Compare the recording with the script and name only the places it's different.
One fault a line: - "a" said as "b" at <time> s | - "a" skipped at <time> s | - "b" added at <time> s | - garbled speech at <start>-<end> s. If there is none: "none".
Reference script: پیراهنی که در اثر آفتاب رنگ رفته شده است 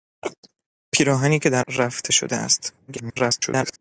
- "اثر آفتاب رنگ" skipped at 1.6 s
- garbled speech at 2.9-3.8 s